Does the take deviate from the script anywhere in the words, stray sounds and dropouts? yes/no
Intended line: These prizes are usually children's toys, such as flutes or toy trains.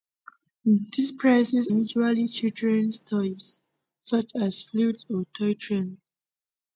yes